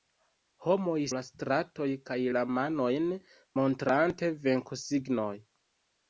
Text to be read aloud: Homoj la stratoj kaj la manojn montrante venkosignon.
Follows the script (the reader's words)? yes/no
yes